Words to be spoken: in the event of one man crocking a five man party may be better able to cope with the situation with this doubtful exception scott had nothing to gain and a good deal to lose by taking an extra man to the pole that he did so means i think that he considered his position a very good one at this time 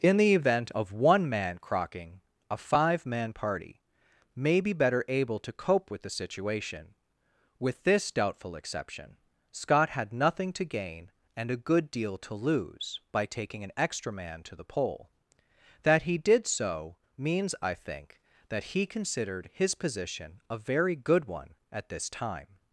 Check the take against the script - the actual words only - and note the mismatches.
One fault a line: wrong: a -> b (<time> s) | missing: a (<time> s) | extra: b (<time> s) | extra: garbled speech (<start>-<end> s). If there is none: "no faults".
no faults